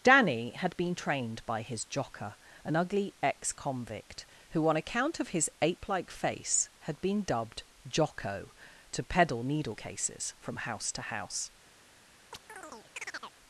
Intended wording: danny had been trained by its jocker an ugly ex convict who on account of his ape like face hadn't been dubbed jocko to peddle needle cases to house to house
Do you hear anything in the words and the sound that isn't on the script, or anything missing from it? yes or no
yes